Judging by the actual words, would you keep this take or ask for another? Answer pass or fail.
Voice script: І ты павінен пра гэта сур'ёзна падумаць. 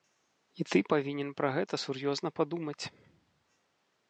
pass